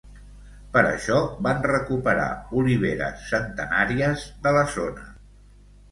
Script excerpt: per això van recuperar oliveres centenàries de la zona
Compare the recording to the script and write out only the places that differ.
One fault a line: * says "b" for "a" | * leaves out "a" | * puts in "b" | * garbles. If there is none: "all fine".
all fine